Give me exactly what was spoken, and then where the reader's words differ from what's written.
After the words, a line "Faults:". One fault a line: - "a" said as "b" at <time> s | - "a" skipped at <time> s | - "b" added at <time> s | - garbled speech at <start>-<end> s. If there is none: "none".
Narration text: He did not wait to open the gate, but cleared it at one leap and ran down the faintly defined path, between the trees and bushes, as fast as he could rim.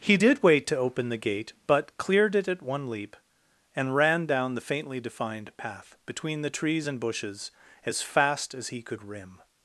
He did wait to open the gate, but cleared it at one leap and ran down the faintly defined path, between the trees and bushes, as fast as he could rim.
Faults:
- "not" skipped at 0.4 s